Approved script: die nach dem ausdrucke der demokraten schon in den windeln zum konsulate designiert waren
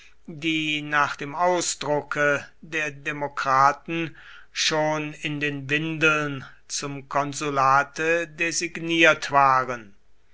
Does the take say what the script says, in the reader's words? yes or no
yes